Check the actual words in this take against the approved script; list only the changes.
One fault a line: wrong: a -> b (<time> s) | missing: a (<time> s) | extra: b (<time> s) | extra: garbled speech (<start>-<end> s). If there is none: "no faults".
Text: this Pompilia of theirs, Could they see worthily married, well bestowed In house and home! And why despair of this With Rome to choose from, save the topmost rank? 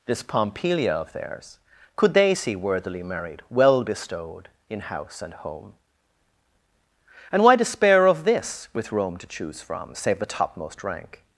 no faults